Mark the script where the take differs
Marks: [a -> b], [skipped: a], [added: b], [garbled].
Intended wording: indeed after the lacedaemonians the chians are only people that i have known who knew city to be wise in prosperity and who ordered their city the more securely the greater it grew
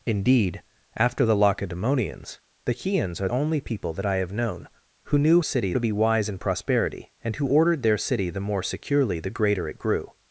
indeed after the lacedaemonians the chians are only people that i have known who knew city to be wise in prosperity and who ordered their city the more securely the greater it grew